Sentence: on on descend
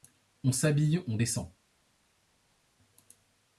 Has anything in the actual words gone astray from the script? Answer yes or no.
yes